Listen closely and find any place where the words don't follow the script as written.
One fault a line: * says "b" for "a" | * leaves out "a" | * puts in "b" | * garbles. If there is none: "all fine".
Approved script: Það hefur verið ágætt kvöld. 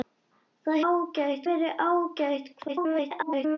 * says "ágætt" for "hefur"
* garbles